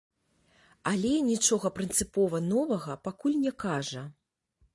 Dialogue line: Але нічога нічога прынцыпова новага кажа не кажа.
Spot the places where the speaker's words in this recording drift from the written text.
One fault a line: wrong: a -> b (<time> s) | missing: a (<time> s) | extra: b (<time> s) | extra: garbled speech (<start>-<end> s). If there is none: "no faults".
missing: нічога (1.7 s)
wrong: кажа -> пакуль (3.1 s)